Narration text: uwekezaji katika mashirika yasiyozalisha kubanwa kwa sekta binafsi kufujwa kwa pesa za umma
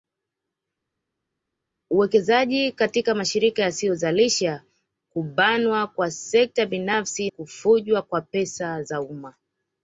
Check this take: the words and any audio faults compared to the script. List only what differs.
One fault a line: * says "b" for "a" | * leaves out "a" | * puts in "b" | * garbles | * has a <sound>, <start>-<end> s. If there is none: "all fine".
all fine